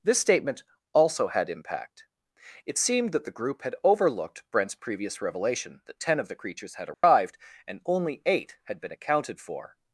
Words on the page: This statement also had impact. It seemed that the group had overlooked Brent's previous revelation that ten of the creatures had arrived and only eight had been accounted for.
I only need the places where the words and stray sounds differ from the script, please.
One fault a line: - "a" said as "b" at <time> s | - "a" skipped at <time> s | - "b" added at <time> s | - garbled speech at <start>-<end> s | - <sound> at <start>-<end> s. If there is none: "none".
- dropout at 6.9-7.0 s